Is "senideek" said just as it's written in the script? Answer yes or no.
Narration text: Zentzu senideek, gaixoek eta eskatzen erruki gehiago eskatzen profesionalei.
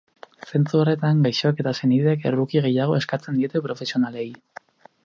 no